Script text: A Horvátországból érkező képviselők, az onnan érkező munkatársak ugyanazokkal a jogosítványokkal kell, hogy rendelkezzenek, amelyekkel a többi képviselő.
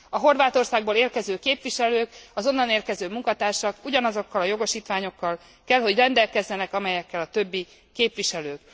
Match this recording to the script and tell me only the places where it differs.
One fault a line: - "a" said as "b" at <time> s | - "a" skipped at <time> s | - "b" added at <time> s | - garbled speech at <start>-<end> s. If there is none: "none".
none